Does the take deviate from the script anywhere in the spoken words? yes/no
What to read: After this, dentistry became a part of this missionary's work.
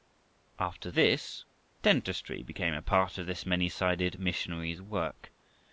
yes